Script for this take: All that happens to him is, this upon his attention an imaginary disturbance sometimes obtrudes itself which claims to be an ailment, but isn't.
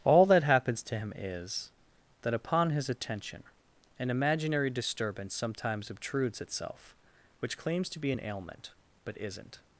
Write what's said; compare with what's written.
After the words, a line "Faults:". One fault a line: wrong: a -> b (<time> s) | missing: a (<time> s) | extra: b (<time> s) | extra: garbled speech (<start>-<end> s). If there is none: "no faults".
All that happens to him is, that upon his attention an imaginary disturbance sometimes obtrudes itself which claims to be an ailment, but isn't.
Faults:
wrong: this -> that (2.2 s)